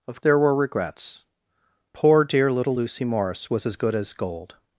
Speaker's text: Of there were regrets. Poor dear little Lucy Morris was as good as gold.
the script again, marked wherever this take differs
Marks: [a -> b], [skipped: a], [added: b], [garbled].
Of there were regrets. Poor dear little Lucy Morris was as good as gold.